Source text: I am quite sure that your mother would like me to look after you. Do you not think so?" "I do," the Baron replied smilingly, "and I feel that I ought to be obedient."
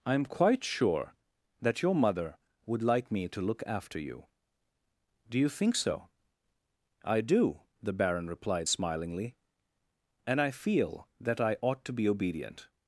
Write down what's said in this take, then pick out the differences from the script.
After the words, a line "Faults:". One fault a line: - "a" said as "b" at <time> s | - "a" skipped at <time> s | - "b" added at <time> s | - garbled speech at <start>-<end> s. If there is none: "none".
I am quite sure that your mother would like me to look after you. Do you think so?" "I do," the Baron replied smilingly, "and I feel that I ought to be obedient."
Faults:
- "not" skipped at 5.5 s